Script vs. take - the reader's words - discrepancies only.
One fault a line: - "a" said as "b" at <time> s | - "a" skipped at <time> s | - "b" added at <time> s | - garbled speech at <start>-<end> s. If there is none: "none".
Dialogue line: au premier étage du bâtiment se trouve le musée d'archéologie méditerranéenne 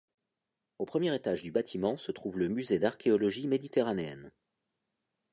none